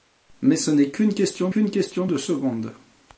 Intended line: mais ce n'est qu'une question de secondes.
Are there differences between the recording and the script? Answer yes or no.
yes